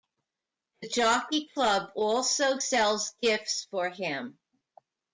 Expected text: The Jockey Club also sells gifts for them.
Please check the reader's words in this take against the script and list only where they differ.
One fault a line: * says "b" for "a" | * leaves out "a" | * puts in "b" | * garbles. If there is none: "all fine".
* says "him" for "them"